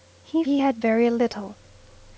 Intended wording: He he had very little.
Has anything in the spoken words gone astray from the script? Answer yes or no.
no